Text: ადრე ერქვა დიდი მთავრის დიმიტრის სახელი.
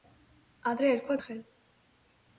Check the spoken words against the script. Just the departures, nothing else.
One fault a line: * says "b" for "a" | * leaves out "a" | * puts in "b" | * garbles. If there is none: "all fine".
* leaves out "დიდი მთავრის დიმიტრის"